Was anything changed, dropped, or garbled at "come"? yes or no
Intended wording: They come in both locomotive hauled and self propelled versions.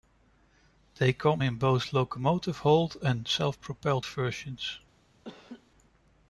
no